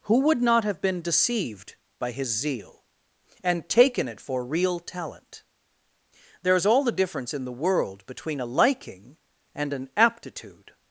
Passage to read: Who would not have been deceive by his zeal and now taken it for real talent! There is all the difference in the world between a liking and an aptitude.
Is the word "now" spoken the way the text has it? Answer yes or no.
no